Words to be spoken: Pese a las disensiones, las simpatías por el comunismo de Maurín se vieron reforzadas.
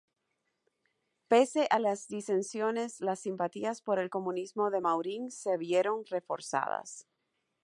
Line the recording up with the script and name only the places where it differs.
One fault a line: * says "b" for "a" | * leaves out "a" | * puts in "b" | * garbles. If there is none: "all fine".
all fine